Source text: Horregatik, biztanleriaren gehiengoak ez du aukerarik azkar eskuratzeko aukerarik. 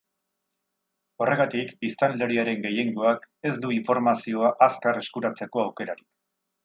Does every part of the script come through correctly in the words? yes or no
no